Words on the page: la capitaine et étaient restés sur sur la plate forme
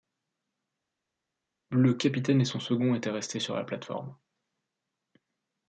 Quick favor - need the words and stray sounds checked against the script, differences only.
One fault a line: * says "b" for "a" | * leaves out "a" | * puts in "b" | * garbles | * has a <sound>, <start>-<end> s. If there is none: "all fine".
* says "le" for "la"
* puts in "son second"
* leaves out "sur"